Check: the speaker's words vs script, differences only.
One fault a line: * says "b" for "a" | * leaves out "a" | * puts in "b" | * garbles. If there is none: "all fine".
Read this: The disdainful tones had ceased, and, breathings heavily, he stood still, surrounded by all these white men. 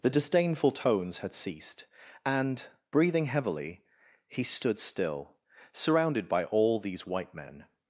* says "breathing" for "breathings"